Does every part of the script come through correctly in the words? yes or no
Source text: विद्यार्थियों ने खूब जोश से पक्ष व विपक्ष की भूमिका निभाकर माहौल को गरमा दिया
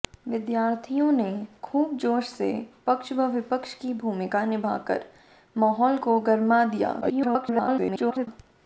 no